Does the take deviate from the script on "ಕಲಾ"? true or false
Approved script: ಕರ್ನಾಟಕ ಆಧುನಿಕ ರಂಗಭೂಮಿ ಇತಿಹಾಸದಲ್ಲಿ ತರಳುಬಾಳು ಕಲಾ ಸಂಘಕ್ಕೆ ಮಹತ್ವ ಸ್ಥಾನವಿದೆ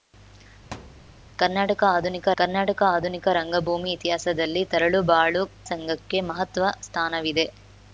true